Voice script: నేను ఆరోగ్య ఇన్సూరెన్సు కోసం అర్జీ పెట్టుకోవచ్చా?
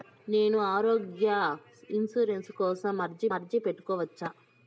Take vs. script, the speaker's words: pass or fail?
fail